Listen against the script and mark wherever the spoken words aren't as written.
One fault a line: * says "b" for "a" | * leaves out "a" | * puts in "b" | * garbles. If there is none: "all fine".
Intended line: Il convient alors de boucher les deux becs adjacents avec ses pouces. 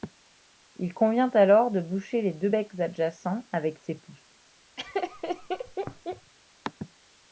all fine